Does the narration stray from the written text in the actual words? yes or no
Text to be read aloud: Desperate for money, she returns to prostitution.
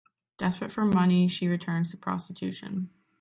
no